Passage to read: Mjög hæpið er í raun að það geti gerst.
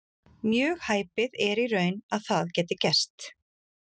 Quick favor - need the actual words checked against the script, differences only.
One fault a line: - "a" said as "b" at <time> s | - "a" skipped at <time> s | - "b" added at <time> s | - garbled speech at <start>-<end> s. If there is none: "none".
none